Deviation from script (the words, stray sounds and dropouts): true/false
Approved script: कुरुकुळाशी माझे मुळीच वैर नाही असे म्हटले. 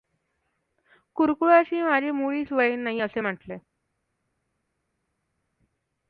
false